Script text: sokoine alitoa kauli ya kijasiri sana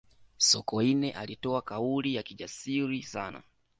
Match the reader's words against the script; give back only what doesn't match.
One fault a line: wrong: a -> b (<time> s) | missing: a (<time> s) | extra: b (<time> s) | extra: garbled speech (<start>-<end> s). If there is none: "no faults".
no faults